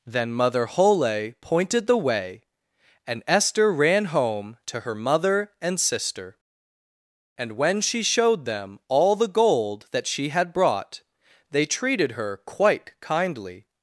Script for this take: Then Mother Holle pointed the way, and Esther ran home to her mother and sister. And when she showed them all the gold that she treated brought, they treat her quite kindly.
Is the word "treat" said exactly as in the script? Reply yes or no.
no